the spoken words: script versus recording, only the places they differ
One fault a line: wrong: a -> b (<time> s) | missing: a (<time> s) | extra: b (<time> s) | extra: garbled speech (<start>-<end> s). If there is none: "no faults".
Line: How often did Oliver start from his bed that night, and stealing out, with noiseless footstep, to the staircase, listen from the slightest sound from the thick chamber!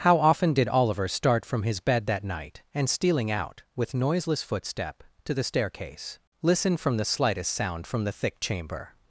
no faults